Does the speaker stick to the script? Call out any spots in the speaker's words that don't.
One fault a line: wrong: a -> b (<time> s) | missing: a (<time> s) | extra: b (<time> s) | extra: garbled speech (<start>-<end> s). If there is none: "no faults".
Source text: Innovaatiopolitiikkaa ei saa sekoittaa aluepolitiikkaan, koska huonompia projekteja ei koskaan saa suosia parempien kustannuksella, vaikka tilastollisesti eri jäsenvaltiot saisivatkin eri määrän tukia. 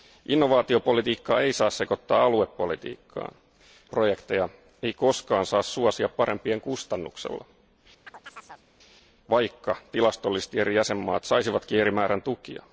missing: koska huonompia (3.4 s)